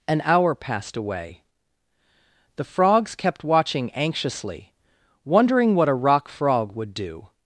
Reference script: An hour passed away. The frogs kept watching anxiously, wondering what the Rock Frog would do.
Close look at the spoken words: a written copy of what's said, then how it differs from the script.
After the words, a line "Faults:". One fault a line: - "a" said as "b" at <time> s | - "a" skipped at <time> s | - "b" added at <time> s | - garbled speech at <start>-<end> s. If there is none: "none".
An hour passed away. The frogs kept watching anxiously, wondering what a Rock Frog would do.
Faults:
- "the" said as "a" at 5.9 s